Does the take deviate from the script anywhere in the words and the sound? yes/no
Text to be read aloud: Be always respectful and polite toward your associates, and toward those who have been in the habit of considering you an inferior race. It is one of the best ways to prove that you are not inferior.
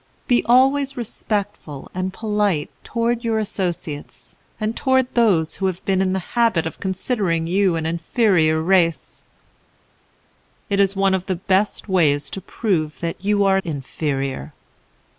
yes